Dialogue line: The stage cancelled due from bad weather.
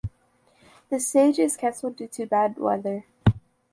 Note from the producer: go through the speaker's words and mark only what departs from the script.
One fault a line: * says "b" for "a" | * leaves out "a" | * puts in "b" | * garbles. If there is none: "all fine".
* puts in "is"
* says "to" for "from"